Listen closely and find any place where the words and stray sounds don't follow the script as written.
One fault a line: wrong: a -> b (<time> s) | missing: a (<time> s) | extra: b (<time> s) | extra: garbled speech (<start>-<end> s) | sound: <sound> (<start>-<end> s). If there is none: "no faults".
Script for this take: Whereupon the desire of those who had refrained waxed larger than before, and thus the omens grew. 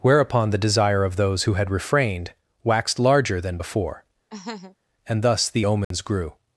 sound: laugh (4.3-4.8 s)
sound: dropout (5.8-5.9 s)